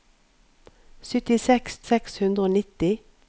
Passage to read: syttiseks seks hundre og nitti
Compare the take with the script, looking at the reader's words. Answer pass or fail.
pass